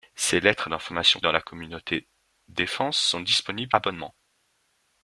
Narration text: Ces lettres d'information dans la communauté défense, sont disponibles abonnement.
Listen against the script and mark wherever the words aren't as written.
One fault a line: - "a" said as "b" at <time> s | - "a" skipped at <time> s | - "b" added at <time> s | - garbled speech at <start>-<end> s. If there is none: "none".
none